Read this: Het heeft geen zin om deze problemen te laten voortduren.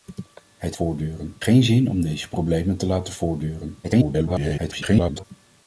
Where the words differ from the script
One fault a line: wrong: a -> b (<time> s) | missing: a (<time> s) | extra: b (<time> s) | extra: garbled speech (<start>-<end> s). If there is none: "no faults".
wrong: heeft -> voortduren (0.7 s)
extra: garbled speech (3.8-5.2 s)